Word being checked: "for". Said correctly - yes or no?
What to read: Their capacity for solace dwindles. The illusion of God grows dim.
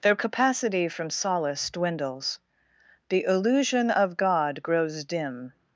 no